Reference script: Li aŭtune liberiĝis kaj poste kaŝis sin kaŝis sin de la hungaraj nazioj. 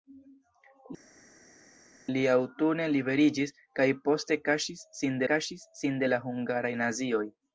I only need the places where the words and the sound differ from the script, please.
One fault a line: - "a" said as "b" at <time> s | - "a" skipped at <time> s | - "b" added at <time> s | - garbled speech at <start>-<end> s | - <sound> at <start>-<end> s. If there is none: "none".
none